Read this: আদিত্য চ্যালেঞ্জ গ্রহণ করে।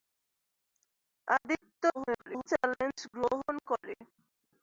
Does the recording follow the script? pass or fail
fail